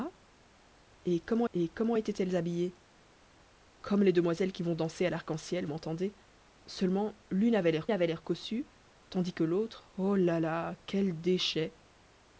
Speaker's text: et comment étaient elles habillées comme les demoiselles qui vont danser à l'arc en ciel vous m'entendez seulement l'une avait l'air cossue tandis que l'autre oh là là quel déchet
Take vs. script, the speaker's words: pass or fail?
fail